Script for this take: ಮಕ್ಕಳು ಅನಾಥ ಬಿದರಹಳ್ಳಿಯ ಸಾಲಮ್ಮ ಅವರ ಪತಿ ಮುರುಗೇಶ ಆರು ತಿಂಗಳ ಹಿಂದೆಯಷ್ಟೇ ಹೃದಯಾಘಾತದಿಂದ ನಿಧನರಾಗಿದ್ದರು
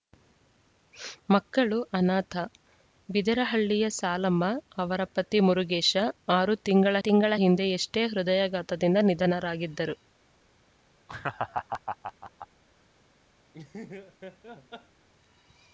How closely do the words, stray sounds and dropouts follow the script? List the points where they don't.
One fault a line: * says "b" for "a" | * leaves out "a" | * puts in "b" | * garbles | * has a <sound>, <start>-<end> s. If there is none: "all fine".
* puts in "ತಿಂಗಳ"
* has a laugh, 11.1-12.5 s
* has a laugh, 13.5-15.1 s